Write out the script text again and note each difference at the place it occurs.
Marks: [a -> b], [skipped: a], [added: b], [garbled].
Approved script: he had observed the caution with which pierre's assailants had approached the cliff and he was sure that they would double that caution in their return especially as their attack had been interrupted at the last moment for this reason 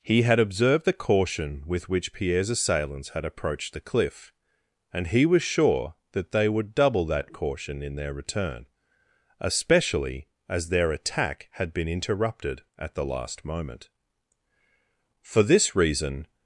he had observed the caution with which pierre's assailants had approached the cliff and he was sure that they would double that caution in their return especially as their attack had been interrupted at the last moment for this reason